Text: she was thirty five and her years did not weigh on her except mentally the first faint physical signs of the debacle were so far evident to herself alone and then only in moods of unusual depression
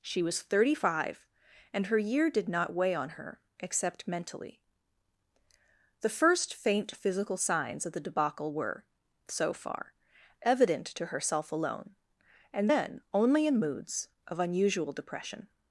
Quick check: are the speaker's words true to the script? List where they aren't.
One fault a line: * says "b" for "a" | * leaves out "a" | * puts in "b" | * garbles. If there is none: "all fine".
* says "year" for "years"